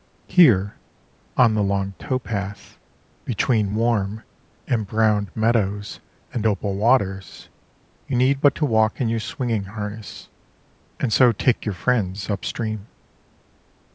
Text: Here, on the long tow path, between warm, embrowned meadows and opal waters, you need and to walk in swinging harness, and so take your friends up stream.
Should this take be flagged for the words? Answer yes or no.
yes